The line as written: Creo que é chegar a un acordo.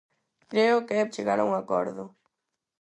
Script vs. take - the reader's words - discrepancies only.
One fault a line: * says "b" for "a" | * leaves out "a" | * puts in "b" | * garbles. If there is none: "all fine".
all fine